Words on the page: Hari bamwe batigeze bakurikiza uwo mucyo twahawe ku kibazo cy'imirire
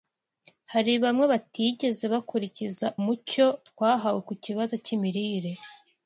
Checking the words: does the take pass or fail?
fail